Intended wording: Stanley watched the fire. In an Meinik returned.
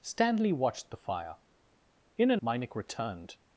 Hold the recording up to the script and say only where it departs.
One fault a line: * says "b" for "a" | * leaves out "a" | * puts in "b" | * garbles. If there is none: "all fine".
all fine